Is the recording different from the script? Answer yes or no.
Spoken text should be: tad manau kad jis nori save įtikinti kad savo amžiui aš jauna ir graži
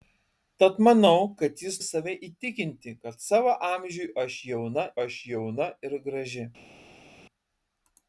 yes